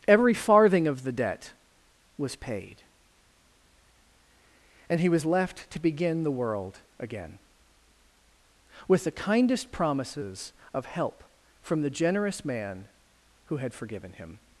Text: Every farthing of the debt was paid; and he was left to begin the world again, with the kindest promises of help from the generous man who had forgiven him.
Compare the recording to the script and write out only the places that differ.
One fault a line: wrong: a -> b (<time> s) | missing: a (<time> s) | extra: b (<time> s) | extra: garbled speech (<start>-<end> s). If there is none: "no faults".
no faults